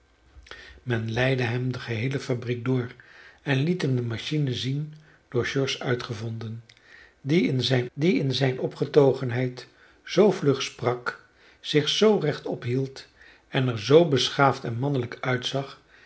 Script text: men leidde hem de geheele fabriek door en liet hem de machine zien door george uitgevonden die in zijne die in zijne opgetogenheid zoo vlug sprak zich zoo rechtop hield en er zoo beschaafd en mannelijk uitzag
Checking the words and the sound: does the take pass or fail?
pass